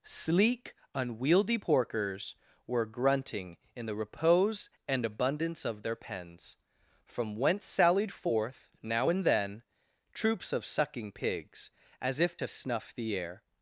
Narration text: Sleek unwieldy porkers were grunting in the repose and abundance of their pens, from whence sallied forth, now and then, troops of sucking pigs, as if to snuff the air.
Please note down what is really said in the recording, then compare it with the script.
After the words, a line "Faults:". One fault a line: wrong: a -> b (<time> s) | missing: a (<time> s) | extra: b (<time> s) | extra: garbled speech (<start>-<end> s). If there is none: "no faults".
Sleek unwieldy porkers were grunting in the repose and abundance of their pens, from whence sallied forth, now and then, troops of sucking pigs, as if to snuff the air.
Faults:
no faults